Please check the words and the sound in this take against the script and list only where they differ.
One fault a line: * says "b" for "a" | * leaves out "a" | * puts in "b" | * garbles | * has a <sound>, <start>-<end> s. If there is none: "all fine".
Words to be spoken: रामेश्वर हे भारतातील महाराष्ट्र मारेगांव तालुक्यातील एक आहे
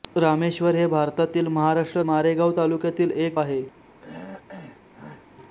* has a throat clearing, 4.0-5.3 s